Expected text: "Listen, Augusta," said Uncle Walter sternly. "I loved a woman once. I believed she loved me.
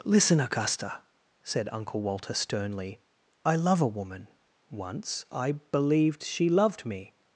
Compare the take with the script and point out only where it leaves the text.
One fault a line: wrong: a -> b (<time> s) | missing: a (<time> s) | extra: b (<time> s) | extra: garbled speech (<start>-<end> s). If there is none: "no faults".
wrong: loved -> love (3.5 s)